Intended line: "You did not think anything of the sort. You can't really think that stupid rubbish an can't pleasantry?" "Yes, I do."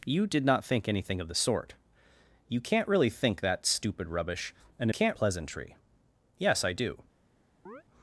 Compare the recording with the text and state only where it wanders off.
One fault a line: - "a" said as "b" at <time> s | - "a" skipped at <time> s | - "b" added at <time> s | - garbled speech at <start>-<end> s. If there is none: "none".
none